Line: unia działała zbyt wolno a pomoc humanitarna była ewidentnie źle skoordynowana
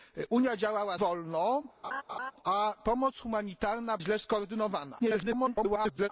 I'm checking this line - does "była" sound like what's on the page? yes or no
no